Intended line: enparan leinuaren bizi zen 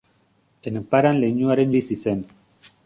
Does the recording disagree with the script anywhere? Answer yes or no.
no